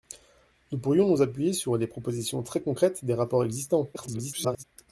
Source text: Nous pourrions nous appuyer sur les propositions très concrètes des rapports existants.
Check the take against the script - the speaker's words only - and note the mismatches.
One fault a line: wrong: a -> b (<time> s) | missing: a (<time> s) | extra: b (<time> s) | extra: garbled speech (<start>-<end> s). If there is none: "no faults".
extra: garbled speech (3.9-4.6 s)